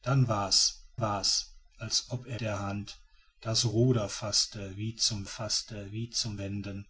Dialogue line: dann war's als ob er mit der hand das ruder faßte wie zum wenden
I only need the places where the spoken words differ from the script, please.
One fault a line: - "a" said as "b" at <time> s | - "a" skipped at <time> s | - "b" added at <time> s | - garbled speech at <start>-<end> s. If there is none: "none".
- "war's" added at 1.0 s
- "mit" skipped at 2.4 s
- "faßte wie zum" added at 5.3 s